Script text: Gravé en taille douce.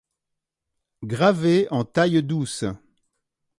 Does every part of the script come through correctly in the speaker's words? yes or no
yes